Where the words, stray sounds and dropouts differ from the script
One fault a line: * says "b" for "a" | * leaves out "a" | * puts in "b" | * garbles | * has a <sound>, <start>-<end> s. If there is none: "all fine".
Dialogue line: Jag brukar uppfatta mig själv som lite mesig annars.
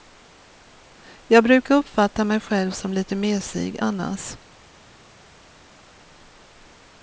all fine